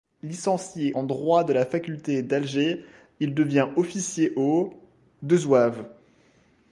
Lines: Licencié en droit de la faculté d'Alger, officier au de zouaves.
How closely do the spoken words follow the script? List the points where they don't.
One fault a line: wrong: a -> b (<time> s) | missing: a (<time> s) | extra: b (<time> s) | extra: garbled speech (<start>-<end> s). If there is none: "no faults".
extra: il devient (3.2 s)